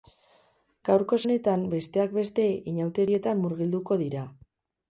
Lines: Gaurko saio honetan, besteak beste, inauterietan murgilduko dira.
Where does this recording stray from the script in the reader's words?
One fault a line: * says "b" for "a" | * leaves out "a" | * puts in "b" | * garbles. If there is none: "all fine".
* leaves out "saio"